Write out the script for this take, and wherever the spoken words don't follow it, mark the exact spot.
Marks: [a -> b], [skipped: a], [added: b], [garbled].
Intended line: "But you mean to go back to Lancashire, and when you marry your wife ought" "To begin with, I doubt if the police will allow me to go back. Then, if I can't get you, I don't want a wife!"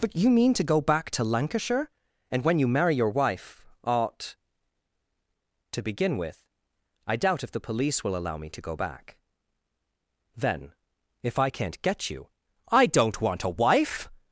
"But you mean to go back to Lancashire, and when you marry your wife ought" "To begin with, I doubt if the police will allow me to go back. Then, if I can't get you, I don't want a wife!"